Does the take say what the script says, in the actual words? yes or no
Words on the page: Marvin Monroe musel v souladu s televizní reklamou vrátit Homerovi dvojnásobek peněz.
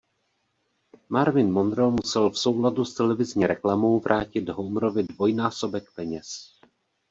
yes